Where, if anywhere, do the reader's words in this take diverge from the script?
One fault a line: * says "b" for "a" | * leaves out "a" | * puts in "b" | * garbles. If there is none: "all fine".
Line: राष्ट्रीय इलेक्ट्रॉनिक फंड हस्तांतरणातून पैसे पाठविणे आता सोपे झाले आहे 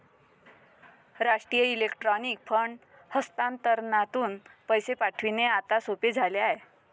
all fine